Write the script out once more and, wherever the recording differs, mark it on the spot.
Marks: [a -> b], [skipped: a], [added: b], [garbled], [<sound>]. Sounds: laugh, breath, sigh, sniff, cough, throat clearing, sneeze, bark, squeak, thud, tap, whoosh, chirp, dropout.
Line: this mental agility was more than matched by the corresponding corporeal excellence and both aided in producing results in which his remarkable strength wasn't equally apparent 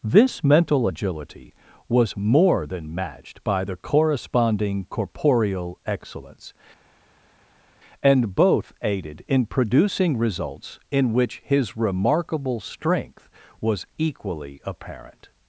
this mental agility was more than matched by the corresponding corporeal excellence and both aided in producing results in which his remarkable strength [wasn't -> was] equally apparent